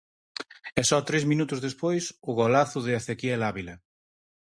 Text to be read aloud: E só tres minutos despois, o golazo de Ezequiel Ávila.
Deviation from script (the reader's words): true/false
false